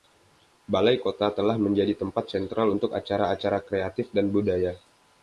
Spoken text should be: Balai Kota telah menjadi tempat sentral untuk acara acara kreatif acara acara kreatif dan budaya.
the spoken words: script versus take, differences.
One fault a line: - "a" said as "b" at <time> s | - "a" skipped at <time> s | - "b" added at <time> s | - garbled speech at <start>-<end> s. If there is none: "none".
- "acara acara kreatif" skipped at 4.1 s